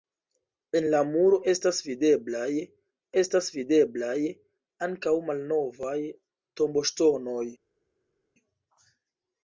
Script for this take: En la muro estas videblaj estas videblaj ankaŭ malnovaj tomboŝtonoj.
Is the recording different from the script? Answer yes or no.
no